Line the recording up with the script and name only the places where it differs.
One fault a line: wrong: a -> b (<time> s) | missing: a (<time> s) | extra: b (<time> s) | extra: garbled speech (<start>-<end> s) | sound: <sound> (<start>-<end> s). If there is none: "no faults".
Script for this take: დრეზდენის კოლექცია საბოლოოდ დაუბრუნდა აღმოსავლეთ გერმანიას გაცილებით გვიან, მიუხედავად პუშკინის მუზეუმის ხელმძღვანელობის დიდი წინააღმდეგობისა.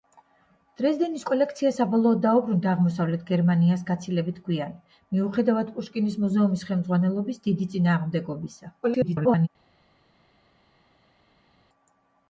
extra: garbled speech (8.8-9.5 s)